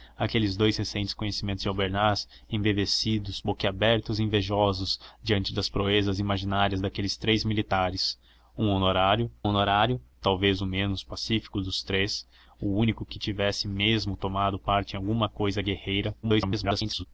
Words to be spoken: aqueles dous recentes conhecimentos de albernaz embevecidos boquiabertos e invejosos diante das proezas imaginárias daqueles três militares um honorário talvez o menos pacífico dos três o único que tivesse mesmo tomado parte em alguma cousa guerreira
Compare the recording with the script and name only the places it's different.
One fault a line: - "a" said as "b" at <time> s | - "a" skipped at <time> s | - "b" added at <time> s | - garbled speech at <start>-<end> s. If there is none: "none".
- "honorário" added at 9.4 s
- garbled speech at 16.2-17.1 s